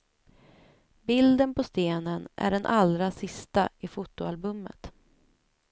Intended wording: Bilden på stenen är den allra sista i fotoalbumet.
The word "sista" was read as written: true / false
true